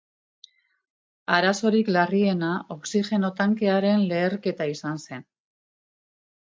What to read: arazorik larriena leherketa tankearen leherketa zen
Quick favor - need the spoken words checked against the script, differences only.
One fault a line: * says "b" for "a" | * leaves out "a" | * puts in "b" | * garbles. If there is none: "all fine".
* says "oxigeno" for "leherketa"
* puts in "izan"